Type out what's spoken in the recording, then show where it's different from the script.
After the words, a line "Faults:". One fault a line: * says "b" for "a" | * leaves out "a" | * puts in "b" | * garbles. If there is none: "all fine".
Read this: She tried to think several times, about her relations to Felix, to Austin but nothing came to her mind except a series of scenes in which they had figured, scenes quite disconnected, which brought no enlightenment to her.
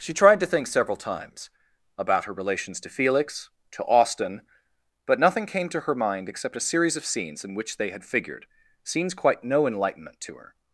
She tried to think several times, about her relations to Felix, to Austin but nothing came to her mind except a series of scenes in which they had figured, scenes quite no enlightenment to her.
Faults:
* leaves out "disconnected which brought"